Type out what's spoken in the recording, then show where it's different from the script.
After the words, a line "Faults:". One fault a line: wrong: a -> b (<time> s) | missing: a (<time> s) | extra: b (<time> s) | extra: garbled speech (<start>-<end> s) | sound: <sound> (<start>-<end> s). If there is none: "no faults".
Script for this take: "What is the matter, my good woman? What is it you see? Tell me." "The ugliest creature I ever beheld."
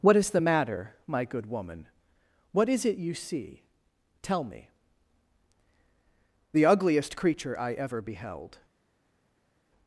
"What is the matter, my good woman? What is it you see? Tell me." "The ugliest creature I ever beheld."
Faults:
no faults